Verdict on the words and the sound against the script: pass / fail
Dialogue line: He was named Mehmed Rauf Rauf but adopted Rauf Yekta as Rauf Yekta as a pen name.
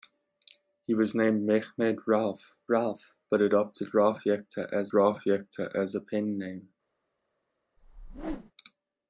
fail